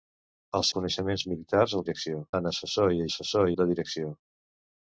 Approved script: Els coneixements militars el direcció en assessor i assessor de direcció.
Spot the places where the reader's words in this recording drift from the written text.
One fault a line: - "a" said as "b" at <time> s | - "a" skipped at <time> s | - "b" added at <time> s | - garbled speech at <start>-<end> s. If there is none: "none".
none